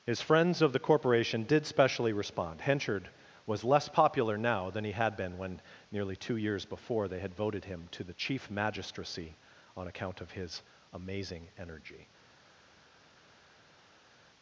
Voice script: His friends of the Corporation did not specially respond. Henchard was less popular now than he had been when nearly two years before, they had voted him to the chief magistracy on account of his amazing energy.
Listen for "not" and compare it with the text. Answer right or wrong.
wrong